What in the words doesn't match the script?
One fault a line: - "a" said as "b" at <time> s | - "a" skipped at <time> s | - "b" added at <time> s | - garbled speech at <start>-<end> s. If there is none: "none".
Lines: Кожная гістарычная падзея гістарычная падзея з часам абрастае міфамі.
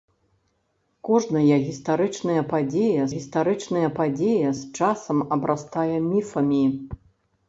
none